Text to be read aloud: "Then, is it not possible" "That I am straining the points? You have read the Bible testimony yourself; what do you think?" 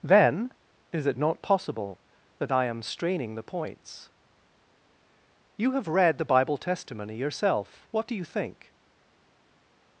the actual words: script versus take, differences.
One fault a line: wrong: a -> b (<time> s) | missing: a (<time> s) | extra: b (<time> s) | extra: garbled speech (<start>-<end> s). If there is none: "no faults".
no faults